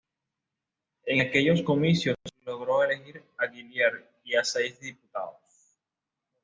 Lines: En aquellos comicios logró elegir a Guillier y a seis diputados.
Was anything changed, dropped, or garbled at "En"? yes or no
no